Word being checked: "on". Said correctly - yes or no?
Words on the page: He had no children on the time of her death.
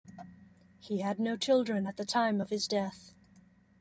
no